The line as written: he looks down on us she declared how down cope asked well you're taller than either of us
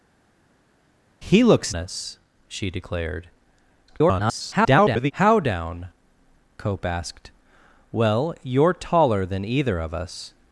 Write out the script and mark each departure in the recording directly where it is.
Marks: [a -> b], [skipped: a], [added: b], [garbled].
he looks [skipped: down on] us she declared [garbled] how down cope asked well you're taller than either of us